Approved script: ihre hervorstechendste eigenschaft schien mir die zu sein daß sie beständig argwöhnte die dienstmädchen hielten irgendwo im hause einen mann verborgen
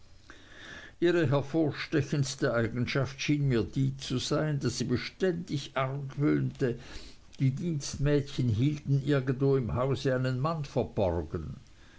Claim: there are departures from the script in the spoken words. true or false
false